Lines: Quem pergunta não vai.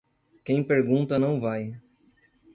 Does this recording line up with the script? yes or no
yes